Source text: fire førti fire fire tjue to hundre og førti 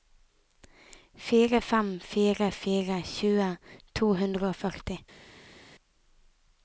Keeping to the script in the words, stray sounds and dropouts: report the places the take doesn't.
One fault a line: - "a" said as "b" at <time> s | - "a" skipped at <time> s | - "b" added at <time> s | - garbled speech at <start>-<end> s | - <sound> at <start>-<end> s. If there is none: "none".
- "førti" said as "fem" at 1.7 s